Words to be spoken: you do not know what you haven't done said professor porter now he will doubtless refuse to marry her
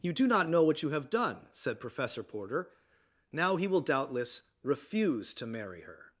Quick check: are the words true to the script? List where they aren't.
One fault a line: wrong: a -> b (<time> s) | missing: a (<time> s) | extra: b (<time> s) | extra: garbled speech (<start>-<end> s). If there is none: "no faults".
wrong: haven't -> have (0.9 s)